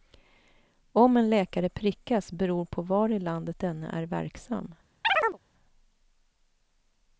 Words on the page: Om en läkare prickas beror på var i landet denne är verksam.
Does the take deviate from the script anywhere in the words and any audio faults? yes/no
yes